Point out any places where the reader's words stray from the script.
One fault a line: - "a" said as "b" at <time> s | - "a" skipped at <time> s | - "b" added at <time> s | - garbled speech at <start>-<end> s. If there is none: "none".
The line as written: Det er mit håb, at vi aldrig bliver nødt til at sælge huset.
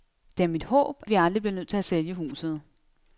- "at" skipped at 1.0 s